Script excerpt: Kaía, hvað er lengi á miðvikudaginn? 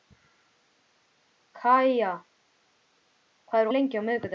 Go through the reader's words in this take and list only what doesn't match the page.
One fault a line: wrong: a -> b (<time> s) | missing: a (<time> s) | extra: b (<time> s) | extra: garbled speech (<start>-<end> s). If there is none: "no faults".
no faults